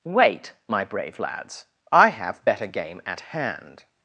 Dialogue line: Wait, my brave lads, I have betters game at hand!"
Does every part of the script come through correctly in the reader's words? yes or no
no